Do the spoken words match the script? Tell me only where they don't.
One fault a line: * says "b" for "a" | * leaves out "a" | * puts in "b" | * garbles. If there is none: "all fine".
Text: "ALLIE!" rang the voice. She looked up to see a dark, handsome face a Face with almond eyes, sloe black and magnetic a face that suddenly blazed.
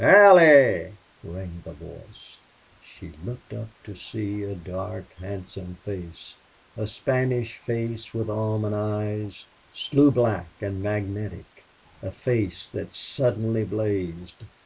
* puts in "Spanish"